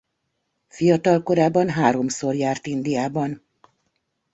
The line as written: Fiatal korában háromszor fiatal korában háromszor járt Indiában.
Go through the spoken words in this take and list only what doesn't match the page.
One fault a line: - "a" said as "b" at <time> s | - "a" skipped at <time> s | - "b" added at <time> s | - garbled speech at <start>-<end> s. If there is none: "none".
- "fiatal korában háromszor" skipped at 2.4 s